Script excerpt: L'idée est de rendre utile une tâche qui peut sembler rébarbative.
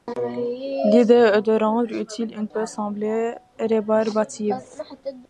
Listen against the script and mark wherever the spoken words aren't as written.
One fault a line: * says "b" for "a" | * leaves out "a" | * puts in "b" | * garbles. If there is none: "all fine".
* leaves out "tâche qui"